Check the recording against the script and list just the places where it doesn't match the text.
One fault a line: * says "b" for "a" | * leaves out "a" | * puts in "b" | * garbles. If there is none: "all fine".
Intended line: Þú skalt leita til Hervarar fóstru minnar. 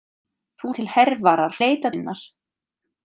* leaves out "skalt leita"
* says "leita" for "fóstru"